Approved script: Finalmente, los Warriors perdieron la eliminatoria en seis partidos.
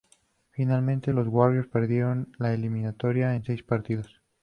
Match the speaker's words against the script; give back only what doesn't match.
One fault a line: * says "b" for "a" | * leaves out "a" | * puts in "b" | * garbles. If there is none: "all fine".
all fine